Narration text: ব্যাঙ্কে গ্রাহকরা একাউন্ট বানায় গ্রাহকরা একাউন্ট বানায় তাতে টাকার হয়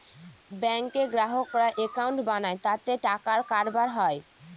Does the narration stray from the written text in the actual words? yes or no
yes